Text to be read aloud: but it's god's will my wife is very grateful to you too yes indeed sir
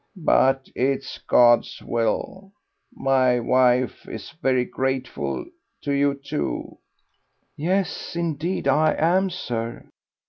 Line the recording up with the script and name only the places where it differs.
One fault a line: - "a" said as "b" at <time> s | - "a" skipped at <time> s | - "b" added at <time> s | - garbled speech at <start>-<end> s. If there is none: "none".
- "i am" added at 8.7 s